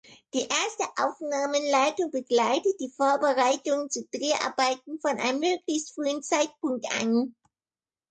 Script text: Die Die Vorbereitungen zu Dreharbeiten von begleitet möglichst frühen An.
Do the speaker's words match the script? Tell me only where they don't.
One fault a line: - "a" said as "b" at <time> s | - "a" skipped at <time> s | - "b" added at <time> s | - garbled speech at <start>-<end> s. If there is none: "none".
- "Erste Aufnahmeleitung begleitet" added at 0.5 s
- "begleitet" said as "einem" at 5.2 s
- "Zeitpunkt" added at 6.2 s